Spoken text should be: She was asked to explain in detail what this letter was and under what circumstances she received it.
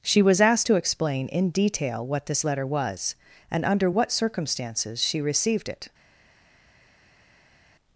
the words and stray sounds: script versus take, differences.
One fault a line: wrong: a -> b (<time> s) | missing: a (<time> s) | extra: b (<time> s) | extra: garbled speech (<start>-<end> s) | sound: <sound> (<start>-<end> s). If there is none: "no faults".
no faults